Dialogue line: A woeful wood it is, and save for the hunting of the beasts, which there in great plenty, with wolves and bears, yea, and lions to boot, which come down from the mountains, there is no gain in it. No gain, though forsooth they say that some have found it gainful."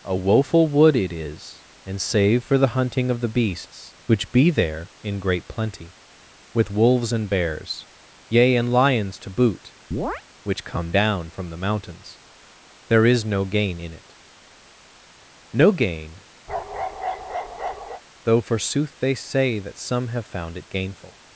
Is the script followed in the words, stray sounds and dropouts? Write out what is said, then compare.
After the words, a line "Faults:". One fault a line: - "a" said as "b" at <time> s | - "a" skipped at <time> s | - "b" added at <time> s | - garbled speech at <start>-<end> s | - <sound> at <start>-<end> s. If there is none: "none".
A woeful wood it is, and save for the hunting of the beasts, which be there in great plenty, with wolves and bears, yea, and lions to boot, which come down from the mountains, there is no gain in it. No gain, though forsooth they say that some have found it gainful."
Faults:
- "be" added at 4.3 s
- chirp at 9.9-10.2 s
- bark at 16.5-18.0 s